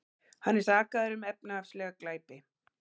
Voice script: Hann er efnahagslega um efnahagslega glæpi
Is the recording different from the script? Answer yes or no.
yes